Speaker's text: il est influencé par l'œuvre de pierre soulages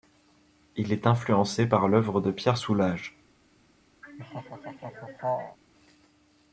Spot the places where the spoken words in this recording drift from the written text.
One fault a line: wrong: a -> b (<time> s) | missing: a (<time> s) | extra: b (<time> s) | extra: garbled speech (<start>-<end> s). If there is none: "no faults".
no faults